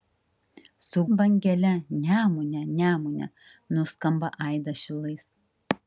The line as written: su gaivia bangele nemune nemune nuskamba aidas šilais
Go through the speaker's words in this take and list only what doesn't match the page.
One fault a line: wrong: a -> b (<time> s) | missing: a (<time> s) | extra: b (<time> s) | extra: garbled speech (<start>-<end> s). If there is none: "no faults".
missing: gaivia (1.0 s)